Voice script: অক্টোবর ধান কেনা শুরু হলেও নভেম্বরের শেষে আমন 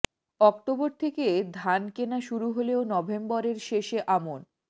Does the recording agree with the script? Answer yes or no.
no